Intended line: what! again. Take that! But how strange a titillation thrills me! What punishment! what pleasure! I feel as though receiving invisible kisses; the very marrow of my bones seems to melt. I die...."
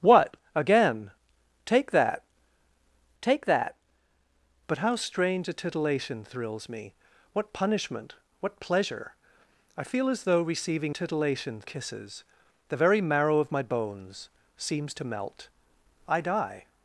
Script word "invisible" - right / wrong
wrong